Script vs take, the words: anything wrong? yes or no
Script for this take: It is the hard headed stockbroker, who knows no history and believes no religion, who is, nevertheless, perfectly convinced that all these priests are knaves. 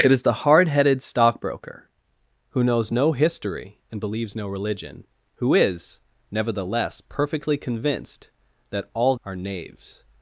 yes